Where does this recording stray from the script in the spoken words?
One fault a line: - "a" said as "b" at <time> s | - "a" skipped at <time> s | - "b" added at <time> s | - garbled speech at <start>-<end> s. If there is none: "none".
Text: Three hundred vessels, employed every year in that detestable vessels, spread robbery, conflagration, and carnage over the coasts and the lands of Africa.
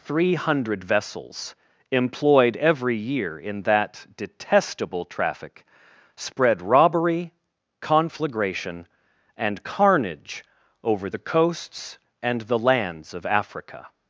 - "vessels" said as "traffic" at 5.0 s